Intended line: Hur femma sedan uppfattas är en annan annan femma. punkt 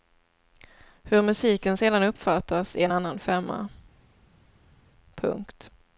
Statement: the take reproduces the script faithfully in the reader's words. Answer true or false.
false